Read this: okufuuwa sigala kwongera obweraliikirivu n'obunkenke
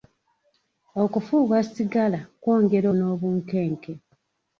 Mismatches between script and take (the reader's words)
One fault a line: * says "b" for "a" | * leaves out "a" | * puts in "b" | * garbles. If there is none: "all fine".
* leaves out "obweraliikirivu"